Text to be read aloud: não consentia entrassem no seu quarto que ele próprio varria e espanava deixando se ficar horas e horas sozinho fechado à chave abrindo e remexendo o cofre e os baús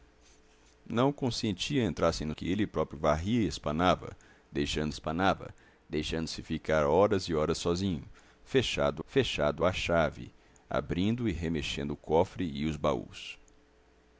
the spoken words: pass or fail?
fail